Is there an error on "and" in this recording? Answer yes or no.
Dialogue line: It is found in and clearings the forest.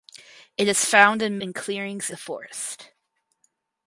no